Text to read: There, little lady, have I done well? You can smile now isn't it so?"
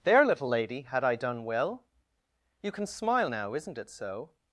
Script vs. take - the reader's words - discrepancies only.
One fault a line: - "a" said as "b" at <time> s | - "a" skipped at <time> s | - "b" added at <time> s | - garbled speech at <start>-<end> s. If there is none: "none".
- "have" said as "had" at 0.8 s